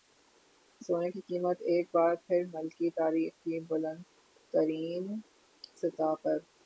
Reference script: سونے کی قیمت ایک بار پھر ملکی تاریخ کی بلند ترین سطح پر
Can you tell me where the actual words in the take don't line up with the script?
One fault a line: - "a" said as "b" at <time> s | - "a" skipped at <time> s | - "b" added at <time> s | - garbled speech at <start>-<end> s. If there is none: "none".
none